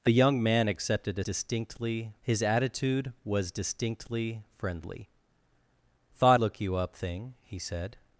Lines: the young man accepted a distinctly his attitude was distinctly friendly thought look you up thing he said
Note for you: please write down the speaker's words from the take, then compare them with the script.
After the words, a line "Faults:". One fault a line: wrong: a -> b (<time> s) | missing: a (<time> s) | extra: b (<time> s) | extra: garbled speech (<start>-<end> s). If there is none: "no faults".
the young man accepted a distinctly his attitude was distinctly friendly thought look you up thing he said
Faults:
no faults